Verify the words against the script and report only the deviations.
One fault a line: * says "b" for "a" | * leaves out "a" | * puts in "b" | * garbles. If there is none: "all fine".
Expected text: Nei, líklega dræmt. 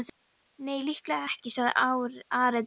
* puts in "ekki sagði Ari"